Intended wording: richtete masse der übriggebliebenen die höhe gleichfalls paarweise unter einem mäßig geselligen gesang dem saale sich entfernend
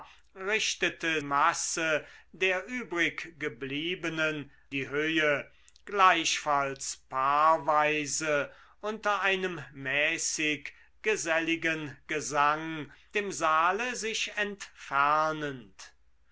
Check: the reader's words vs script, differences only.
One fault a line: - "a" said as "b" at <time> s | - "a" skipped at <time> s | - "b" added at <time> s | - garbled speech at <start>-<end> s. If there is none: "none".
none